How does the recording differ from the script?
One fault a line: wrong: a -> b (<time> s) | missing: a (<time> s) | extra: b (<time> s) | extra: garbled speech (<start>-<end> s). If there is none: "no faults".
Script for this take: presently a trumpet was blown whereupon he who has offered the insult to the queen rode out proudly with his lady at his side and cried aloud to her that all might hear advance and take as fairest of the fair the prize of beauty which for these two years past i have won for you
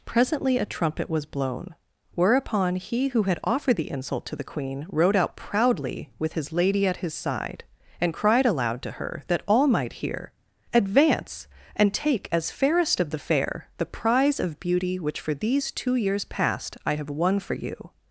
wrong: has -> had (3.2 s)